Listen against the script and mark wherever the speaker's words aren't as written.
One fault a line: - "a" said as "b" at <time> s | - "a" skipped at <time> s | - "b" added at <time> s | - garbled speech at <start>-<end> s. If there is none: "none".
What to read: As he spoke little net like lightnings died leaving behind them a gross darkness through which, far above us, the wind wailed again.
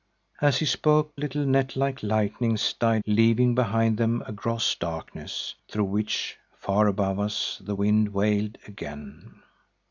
none